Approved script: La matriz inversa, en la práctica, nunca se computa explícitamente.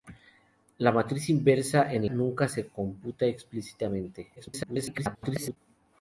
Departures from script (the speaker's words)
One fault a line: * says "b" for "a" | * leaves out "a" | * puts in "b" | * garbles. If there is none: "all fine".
* leaves out "la práctica"
* garbles